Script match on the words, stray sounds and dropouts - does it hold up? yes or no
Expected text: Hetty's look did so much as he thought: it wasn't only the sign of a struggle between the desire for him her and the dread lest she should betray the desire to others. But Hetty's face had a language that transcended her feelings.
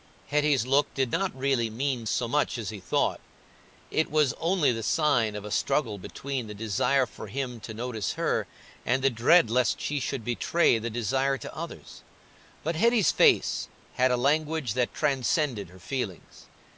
no